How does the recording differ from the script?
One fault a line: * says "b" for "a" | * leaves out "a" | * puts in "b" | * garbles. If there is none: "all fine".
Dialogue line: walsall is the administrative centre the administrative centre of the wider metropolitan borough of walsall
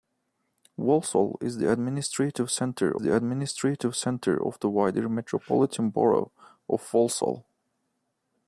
all fine